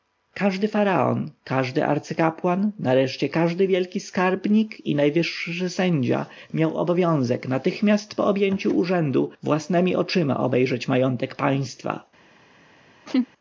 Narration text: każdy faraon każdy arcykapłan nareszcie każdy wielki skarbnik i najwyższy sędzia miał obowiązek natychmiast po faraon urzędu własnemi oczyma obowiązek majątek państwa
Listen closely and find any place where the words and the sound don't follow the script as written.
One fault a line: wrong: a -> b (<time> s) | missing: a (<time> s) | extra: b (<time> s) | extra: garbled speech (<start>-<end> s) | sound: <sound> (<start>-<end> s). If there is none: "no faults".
wrong: faraon -> objęciu (8.2 s)
wrong: obowiązek -> obejrzeć (10.4 s)
sound: laugh (13.1-13.3 s)